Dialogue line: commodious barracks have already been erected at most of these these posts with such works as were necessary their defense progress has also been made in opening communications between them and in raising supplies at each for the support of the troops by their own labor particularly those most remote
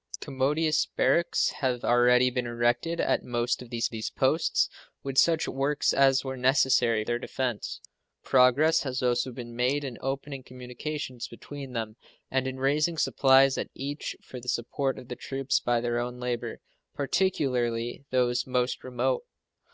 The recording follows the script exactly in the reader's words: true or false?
true